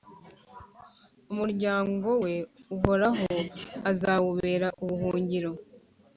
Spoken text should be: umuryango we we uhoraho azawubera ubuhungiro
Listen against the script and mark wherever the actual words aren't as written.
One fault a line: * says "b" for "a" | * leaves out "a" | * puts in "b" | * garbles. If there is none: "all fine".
* leaves out "we"